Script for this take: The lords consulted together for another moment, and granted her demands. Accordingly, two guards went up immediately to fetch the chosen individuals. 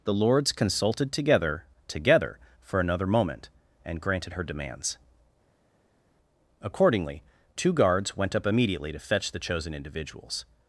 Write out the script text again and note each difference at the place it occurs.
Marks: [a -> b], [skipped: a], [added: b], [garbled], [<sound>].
The lords consulted together [added: together] for another moment, and granted her demands. Accordingly, two guards went up immediately to fetch the chosen individuals.